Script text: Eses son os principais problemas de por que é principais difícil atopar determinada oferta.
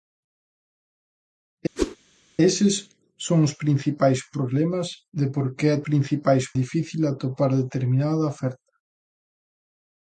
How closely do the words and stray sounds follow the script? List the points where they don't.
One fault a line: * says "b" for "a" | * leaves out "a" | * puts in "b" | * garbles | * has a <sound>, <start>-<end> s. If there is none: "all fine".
* has a whoosh, 1.8-2.0 s